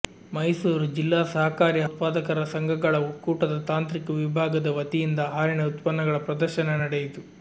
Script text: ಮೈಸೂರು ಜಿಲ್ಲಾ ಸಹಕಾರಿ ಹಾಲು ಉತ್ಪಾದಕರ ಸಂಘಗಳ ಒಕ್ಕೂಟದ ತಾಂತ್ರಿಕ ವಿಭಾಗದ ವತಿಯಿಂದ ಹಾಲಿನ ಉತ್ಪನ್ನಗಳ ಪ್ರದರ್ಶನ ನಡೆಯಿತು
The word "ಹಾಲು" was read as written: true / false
false